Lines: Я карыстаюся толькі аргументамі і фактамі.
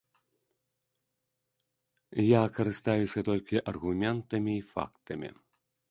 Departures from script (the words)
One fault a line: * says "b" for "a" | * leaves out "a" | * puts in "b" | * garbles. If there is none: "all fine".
all fine